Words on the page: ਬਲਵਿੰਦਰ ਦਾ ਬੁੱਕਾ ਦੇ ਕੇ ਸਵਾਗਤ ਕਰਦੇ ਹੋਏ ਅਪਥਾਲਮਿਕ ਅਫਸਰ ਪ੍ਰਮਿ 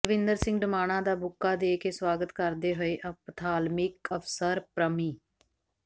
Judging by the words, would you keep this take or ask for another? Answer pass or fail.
fail